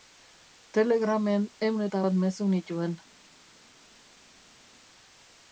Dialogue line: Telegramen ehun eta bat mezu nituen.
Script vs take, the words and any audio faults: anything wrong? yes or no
no